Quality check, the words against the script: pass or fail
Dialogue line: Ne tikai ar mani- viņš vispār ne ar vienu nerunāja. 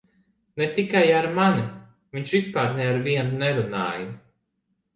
pass